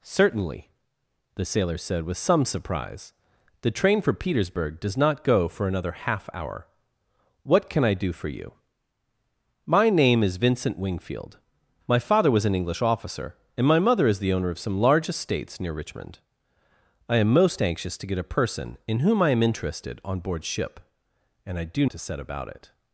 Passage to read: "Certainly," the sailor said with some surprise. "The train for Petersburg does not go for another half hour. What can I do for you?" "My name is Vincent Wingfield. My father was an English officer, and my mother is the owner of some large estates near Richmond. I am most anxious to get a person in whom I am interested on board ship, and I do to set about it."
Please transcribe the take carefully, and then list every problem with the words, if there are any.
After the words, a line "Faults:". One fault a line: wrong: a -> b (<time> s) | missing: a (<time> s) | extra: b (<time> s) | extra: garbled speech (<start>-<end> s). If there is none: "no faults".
"Certainly," the sailor said with some surprise. "The train for Petersburg does not go for another half hour. What can I do for you?" "My name is Vincent Wingfield. My father was an English officer, and my mother is the owner of some large estates near Richmond. I am most anxious to get a person in whom I am interested on board ship, and I do to set about it."
Faults:
no faults